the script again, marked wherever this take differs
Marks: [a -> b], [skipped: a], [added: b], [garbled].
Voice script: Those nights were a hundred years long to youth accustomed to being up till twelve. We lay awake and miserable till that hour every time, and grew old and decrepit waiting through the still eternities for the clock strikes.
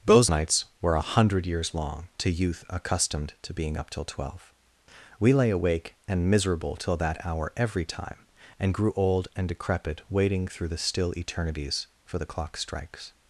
Those nights were a hundred years long to youth accustomed to being up till twelve. We lay awake and miserable till that hour every time, and grew old and decrepit waiting through the still eternities for the clock strikes.